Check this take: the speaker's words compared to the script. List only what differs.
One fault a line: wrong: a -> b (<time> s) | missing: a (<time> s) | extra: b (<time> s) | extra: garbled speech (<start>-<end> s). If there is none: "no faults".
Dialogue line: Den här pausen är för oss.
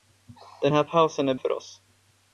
no faults